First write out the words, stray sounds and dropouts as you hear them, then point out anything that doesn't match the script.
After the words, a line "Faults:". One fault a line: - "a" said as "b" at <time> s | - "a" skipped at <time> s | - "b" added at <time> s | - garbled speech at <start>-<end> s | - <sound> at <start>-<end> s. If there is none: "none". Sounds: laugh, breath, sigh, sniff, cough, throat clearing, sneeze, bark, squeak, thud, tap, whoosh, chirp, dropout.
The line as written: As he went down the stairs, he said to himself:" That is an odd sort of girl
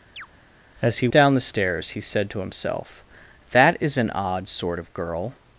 As he down the stairs, he said to himself:" That is an odd sort of girl
Faults:
- chirp at 0.2-0.3 s
- "went" skipped at 1.1 s